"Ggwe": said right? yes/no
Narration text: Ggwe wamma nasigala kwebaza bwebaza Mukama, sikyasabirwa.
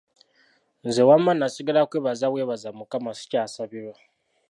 no